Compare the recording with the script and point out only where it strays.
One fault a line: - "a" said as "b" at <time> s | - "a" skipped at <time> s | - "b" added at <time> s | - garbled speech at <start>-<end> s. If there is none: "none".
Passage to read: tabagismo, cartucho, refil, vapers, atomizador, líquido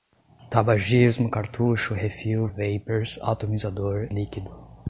none